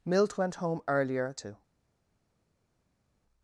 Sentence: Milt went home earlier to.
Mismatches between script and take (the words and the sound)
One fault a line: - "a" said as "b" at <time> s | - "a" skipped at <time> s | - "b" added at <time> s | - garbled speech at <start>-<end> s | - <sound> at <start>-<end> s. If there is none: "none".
none